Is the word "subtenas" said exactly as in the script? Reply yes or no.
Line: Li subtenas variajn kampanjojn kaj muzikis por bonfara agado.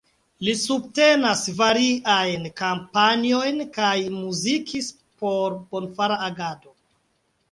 yes